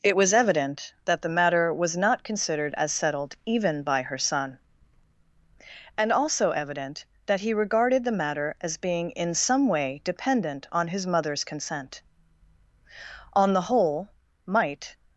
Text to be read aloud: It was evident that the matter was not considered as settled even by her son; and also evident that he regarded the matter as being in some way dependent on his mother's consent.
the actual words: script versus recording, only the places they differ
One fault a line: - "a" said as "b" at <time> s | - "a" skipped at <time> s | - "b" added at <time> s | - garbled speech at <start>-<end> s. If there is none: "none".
- "On the whole might" added at 13.3 s